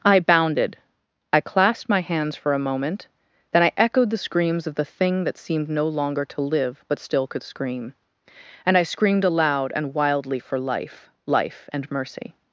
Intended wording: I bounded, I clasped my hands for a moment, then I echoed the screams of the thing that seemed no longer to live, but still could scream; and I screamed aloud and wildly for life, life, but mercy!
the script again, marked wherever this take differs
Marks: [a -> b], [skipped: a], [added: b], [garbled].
I bounded, I clasped my hands for a moment, then I echoed the screams of the thing that seemed no longer to live, but still could scream; and I screamed aloud and wildly for life, life, [but -> and] mercy!